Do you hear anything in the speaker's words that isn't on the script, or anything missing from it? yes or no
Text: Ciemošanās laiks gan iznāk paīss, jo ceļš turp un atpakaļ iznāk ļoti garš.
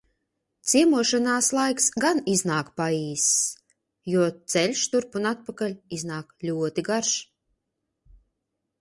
no